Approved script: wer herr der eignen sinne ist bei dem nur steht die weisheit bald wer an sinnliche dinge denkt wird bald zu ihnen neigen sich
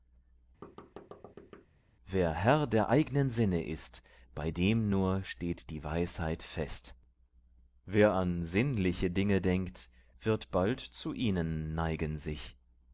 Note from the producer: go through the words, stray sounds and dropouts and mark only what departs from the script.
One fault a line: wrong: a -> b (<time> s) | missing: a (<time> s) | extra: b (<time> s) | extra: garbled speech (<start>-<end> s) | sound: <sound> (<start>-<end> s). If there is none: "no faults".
sound: thud (0.6-1.7 s)
wrong: bald -> fest (6.4 s)